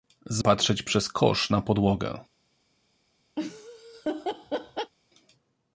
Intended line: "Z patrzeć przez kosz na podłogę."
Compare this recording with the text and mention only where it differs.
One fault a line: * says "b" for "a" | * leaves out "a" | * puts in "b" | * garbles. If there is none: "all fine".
all fine